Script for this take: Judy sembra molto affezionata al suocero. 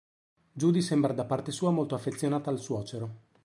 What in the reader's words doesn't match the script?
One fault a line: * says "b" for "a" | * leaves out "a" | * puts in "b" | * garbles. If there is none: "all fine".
* puts in "da parte sua"